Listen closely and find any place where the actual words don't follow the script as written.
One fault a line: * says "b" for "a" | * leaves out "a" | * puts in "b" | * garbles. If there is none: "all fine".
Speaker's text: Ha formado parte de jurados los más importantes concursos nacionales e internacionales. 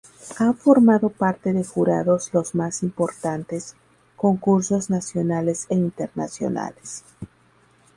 all fine